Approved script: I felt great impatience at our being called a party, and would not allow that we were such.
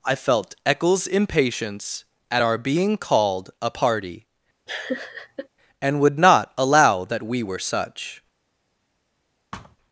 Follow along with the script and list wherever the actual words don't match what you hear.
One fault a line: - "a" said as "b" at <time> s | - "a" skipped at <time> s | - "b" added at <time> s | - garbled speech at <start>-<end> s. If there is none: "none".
- "great" said as "eccles" at 0.7 s